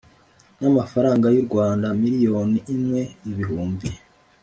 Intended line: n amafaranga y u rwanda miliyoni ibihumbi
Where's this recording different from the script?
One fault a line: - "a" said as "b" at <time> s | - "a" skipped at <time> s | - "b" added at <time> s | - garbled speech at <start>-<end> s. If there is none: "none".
- "imwe" added at 2.8 s